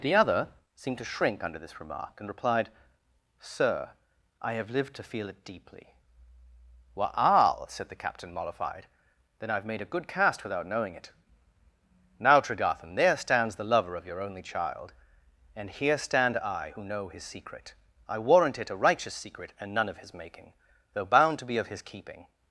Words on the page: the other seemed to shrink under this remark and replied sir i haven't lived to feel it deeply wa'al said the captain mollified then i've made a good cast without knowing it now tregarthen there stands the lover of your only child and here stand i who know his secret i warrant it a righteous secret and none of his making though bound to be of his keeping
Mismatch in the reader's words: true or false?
true